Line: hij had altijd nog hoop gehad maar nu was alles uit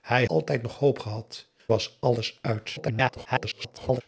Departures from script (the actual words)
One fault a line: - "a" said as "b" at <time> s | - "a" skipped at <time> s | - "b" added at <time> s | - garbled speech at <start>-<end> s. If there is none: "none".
- "had" skipped at 0.2 s
- "maar nu" skipped at 1.5 s
- garbled speech at 2.7-4.0 s